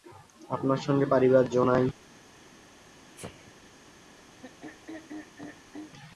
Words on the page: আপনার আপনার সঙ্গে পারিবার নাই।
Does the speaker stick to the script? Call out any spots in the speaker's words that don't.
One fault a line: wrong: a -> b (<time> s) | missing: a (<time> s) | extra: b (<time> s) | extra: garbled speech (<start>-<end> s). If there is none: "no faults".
missing: আপনার (0.8 s)
extra: জো (1.5 s)